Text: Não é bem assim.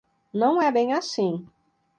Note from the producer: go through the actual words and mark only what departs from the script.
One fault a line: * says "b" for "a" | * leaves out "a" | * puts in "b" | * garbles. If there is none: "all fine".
all fine